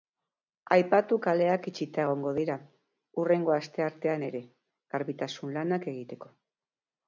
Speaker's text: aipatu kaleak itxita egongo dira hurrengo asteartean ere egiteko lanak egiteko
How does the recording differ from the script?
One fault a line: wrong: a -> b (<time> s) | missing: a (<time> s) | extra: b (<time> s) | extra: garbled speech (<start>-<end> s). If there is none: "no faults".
wrong: egiteko -> garbitasun (5.0 s)